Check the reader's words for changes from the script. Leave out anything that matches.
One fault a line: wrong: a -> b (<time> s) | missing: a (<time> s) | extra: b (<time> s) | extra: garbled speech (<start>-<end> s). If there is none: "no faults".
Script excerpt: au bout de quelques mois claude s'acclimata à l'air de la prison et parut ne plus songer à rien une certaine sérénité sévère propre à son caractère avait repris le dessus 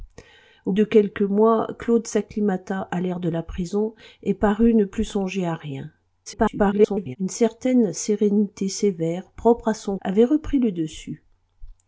missing: bout (0.7 s)
extra: garbled speech (6.3-7.2 s)
missing: caractère (10.0 s)